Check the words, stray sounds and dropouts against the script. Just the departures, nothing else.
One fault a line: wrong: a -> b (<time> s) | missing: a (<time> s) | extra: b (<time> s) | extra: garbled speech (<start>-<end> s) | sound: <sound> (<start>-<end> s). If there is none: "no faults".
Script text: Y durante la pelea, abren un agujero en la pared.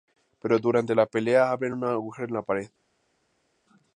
wrong: Y -> Pero (0.4 s)